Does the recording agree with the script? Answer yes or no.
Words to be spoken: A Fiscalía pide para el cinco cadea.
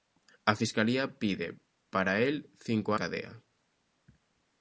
yes